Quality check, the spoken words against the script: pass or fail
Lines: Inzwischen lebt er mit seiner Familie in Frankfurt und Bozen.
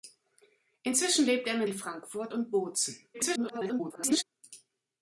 fail